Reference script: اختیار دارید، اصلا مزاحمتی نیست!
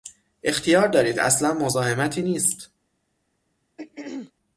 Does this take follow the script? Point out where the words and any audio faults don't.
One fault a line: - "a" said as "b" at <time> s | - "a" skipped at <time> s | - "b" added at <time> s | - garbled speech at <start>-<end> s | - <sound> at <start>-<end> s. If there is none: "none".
- throat clearing at 3.8-4.3 s